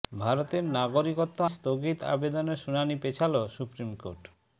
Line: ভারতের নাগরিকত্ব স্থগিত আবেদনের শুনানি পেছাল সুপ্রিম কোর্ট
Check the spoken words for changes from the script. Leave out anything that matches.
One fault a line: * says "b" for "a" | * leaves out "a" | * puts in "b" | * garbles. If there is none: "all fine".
all fine